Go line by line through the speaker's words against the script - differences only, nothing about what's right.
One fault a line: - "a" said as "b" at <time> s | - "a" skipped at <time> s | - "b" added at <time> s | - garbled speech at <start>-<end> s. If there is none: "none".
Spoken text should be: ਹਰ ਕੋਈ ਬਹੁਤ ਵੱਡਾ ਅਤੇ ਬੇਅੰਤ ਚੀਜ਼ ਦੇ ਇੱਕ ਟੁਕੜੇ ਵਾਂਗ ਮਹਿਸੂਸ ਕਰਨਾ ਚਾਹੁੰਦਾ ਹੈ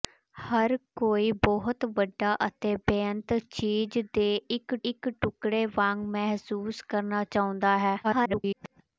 - "ਇੱਕ" added at 4.8 s
- garbled speech at 8.0-8.8 s